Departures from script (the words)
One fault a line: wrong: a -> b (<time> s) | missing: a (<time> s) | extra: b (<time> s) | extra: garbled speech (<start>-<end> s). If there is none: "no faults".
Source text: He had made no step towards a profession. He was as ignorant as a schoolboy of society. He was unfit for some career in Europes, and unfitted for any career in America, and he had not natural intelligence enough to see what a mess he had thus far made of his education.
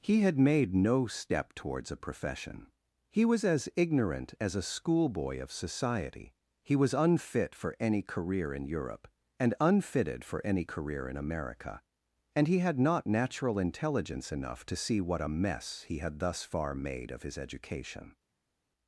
wrong: some -> any (7.8 s)
wrong: Europes -> Europe (8.7 s)